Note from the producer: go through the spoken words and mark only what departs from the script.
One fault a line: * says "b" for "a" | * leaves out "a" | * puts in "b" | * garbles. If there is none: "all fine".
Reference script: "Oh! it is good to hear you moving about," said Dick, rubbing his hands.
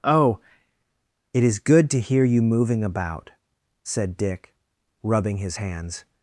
all fine